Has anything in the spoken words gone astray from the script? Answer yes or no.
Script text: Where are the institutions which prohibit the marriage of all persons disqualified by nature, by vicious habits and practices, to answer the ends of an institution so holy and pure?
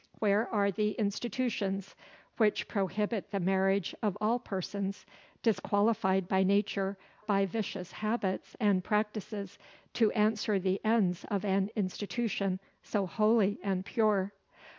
no